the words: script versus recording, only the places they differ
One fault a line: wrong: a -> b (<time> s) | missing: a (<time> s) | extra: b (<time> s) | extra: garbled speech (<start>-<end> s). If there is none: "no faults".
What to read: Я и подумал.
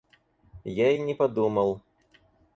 extra: не (1.0 s)